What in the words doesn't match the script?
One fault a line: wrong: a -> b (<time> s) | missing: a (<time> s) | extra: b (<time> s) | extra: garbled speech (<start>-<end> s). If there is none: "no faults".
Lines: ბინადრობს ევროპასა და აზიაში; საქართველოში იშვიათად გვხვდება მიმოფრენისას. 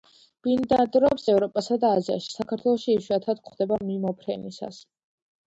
no faults